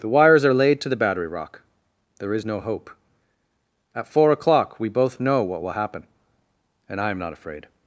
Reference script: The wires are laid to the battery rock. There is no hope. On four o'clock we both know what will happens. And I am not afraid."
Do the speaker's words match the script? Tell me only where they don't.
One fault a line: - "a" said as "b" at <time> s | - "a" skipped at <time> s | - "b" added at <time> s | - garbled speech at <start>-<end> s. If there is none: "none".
- "On" said as "At" at 3.9 s
- "happens" said as "happen" at 5.7 s